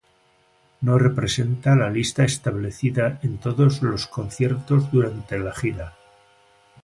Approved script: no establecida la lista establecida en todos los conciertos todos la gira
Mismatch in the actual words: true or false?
true